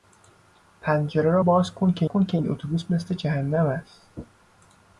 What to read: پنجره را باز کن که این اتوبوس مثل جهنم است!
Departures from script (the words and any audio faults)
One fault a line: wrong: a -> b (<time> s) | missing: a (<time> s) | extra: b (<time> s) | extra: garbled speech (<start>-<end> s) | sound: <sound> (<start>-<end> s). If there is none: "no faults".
extra: کن که (2.0 s)